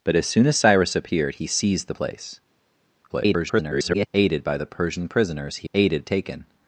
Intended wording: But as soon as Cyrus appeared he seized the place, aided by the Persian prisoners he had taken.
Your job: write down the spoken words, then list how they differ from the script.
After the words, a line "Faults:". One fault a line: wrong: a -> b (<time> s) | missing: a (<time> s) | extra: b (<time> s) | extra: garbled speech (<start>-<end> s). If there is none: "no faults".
But as soon as Cyrus appeared he seized the place, [garbled] aided by the Persian prisoners he aided taken.
Faults:
extra: garbled speech (3.1-4.1 s)
wrong: had -> aided (5.7 s)